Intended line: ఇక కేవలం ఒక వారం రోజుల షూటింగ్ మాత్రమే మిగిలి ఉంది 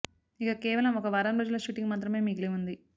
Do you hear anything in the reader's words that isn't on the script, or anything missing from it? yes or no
no